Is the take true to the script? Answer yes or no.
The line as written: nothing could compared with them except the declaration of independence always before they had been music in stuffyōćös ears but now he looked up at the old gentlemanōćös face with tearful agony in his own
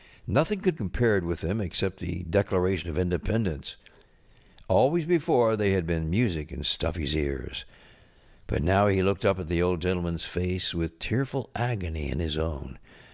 yes